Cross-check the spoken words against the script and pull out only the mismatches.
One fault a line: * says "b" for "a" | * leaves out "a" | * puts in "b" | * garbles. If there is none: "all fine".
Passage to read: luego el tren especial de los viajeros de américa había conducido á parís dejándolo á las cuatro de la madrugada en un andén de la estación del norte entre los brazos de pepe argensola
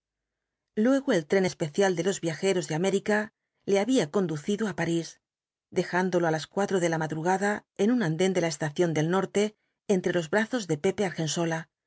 * puts in "le"